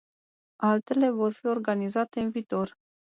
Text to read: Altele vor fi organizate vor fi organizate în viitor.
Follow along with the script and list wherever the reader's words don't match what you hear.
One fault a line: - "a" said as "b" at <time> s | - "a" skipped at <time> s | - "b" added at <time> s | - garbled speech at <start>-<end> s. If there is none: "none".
- "vor fi organizate" skipped at 2.2 s